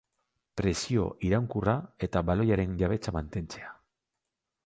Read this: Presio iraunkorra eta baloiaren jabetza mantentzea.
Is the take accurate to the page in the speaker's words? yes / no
yes